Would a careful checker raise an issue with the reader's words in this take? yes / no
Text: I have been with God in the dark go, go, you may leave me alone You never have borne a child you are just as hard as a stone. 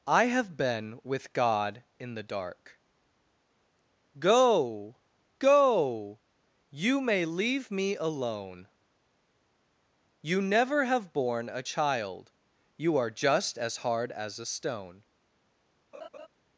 no